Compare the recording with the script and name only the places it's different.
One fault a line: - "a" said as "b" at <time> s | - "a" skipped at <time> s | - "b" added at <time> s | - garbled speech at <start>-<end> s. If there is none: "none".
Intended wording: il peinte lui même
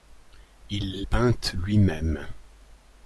none